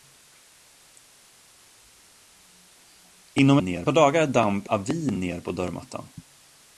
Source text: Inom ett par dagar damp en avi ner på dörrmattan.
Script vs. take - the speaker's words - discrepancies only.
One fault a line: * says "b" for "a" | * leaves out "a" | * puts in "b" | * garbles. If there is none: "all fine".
* says "ner" for "ett"
* leaves out "en"